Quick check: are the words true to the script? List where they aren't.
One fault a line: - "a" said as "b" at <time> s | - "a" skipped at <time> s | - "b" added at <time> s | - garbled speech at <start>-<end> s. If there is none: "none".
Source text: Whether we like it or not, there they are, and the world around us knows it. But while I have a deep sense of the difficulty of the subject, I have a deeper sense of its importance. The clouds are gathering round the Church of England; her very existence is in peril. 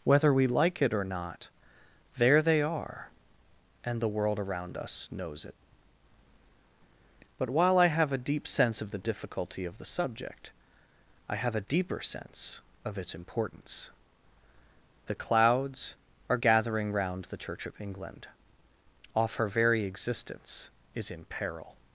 - "off" added at 19.1 s